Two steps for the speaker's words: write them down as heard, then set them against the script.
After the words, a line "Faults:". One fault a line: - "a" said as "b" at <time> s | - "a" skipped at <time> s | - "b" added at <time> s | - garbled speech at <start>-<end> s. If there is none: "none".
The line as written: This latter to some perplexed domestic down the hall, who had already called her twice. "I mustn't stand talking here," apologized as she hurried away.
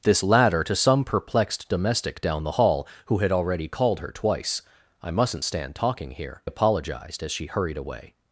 This latter to some perplexed domestic down the hall, who had already called her twice. "I mustn't stand talking here," apologized as she hurried away.
Faults:
none